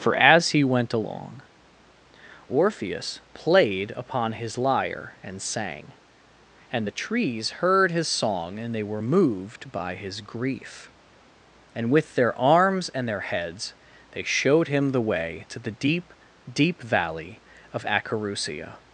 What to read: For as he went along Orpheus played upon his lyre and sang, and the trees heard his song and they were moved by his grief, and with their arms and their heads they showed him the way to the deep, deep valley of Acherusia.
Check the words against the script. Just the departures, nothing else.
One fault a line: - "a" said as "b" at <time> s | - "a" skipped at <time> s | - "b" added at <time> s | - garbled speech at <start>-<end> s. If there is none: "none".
none